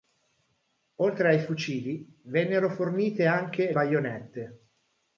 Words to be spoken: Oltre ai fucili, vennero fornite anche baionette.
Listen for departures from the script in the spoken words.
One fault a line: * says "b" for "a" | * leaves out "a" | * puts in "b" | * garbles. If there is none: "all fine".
all fine